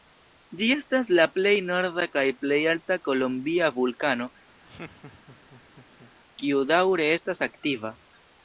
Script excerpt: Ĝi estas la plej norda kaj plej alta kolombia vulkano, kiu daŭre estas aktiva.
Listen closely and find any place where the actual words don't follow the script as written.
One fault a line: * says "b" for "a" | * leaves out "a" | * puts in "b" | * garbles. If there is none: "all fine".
all fine